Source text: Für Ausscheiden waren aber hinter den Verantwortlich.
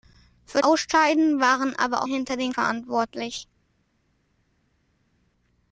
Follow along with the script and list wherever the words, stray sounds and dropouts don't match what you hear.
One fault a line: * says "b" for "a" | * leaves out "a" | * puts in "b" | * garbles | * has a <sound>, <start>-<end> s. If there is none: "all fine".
all fine